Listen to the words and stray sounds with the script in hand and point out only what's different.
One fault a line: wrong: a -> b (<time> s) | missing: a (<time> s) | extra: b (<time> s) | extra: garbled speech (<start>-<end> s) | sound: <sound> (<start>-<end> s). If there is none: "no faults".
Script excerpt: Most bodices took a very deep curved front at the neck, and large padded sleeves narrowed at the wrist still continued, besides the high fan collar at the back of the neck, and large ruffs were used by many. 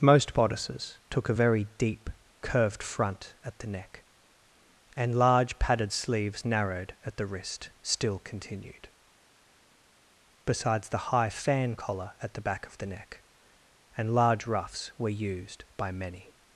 no faults